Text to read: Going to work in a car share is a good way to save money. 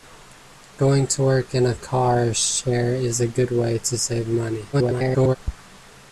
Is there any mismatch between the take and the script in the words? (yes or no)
yes